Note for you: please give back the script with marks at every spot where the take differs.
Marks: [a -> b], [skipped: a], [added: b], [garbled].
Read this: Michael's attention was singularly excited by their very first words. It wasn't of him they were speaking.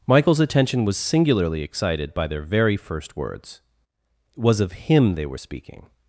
Michael's attention was singularly excited by their very first words. It [wasn't -> was] of him they were speaking.